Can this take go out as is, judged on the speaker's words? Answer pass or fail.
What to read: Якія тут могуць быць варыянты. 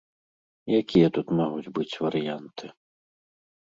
pass